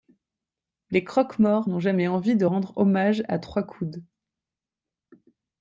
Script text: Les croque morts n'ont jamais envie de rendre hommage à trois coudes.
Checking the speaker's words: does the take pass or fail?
pass